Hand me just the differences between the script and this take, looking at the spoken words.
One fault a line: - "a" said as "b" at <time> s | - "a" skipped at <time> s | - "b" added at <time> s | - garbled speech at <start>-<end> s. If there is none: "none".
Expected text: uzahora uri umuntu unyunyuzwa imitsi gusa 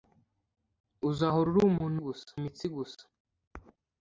- "unyunyuzwa" said as "gusa" at 2.0 s